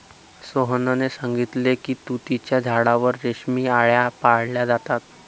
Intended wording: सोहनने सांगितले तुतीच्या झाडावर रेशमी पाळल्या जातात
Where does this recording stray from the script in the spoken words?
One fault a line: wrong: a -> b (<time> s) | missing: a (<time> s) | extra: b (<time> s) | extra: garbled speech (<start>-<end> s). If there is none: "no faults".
extra: की (1.8 s)
extra: आळया (3.7 s)